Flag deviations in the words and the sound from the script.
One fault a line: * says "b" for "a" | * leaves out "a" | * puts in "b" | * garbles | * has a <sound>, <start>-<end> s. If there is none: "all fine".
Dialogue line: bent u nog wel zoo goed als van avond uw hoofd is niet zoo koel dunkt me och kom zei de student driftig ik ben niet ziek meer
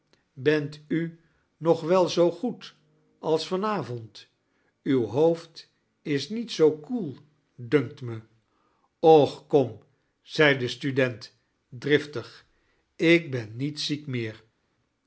all fine